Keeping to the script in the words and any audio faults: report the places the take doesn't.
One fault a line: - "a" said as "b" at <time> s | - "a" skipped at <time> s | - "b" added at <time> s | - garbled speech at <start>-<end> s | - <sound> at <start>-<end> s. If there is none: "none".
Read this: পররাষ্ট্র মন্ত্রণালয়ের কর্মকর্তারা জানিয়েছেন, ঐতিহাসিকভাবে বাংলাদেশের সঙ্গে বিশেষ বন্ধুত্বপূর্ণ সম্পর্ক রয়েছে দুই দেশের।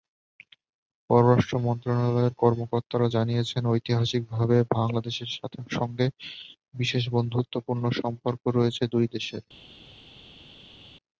none